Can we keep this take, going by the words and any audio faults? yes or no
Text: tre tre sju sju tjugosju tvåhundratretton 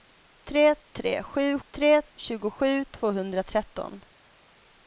no